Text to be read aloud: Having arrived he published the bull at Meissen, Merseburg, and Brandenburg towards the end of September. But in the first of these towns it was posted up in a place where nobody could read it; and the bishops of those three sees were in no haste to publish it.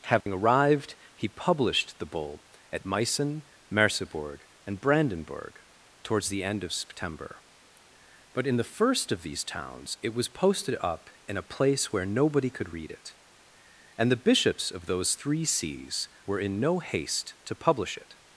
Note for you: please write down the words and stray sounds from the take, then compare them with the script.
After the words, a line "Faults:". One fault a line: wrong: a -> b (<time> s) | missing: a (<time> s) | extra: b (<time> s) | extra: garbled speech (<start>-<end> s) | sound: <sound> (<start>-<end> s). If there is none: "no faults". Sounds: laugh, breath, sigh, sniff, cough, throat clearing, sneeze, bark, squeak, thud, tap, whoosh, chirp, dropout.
Having arrived he published the bull at Meissen, Merseburg, and Brandenburg towards the end of September. But in the first of these towns it was posted up in a place where nobody could read it; and the bishops of those three sees were in no haste to publish it.
Faults:
sound: dropout (0.2-0.3 s)